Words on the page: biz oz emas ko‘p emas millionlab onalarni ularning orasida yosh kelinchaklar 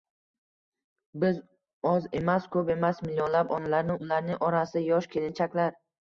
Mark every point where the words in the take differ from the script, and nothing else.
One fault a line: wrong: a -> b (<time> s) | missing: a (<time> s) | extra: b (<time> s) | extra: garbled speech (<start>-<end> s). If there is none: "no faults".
no faults